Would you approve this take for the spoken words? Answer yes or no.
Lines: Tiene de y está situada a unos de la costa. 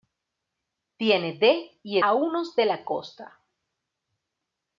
no